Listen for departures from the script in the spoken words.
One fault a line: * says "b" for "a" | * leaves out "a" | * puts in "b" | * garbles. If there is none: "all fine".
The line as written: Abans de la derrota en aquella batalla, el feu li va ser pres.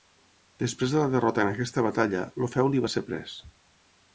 * says "Després" for "Abans"
* says "aquesta" for "aquella"